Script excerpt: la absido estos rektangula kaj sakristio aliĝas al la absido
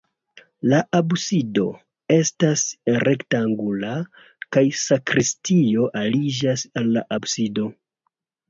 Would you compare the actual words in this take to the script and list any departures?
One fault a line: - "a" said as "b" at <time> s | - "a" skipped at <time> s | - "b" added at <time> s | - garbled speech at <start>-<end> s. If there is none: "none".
- "estos" said as "estas" at 2.1 s